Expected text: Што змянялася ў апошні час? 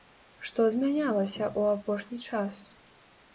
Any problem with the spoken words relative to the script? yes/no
no